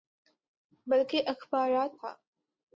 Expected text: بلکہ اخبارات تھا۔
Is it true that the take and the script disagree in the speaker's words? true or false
false